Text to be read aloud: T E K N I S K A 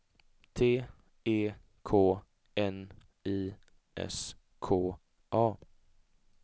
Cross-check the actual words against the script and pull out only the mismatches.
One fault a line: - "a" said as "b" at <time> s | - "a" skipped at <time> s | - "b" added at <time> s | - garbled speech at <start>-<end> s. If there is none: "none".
none